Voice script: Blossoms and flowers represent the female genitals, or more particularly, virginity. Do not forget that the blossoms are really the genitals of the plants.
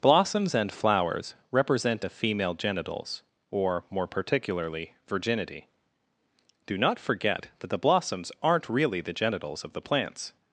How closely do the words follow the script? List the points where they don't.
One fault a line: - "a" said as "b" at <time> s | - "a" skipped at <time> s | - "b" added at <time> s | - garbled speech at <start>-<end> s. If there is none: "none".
- "the" said as "a" at 2.0 s
- "are" said as "aren't" at 8.4 s